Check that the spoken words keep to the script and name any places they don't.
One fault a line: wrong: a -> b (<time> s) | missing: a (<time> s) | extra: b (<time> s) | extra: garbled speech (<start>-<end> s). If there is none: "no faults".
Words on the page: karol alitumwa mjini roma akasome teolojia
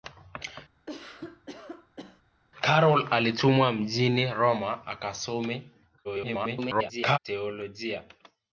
extra: garbled speech (6.0-7.2 s)